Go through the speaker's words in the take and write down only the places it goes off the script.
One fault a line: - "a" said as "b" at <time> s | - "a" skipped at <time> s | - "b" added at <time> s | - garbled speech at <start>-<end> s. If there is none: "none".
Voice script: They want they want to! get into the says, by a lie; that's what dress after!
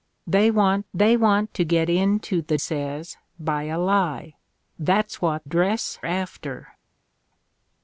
none